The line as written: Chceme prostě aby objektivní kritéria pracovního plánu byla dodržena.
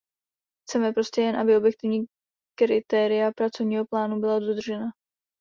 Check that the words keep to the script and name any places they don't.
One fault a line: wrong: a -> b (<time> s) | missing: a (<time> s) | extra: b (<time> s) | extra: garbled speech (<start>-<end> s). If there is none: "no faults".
extra: jen (1.2 s)